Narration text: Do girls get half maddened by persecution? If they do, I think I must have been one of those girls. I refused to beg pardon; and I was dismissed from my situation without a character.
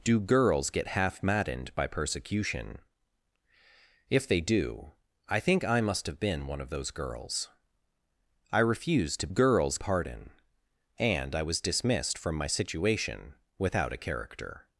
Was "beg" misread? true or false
true